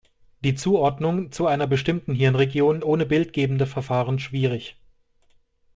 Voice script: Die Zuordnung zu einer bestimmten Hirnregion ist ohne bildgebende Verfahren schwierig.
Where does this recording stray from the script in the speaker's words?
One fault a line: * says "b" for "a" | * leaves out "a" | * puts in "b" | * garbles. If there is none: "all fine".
* leaves out "ist"